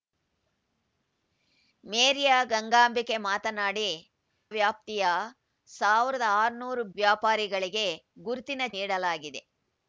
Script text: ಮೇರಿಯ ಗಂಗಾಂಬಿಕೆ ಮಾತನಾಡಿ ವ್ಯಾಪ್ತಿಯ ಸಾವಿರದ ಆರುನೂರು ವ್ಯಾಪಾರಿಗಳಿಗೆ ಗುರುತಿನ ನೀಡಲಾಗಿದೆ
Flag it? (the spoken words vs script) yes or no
no